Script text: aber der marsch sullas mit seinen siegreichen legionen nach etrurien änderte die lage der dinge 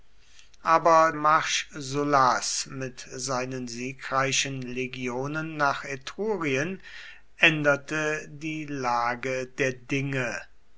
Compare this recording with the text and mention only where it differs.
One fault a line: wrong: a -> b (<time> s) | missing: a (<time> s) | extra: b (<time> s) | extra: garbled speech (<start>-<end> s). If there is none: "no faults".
missing: der (1.1 s)